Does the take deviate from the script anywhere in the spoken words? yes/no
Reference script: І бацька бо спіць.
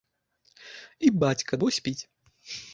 no